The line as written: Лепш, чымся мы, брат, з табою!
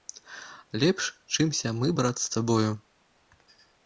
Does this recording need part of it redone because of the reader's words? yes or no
no